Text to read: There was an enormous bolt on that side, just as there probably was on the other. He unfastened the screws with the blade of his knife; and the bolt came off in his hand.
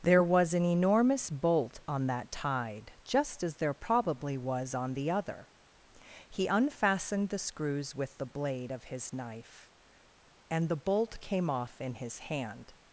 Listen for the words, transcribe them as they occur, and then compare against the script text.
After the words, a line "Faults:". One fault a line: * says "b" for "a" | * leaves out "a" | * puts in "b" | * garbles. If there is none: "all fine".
There was an enormous bolt on that tide, just as there probably was on the other. He unfastened the screws with the blade of his knife; and the bolt came off in his hand.
Faults:
* says "tide" for "side"